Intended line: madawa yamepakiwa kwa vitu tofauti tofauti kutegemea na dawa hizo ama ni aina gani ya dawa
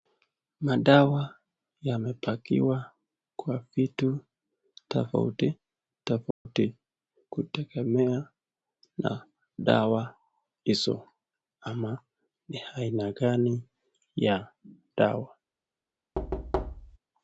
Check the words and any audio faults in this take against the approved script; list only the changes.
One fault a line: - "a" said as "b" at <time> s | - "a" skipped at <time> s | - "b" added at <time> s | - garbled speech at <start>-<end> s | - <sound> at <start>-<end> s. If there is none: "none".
- dropout at 6.3-6.5 s
- thud at 16.1-17.0 s